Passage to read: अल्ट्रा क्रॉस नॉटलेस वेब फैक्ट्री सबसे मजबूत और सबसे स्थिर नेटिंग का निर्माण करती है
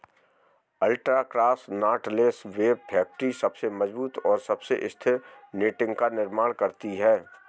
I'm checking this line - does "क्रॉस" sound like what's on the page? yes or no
yes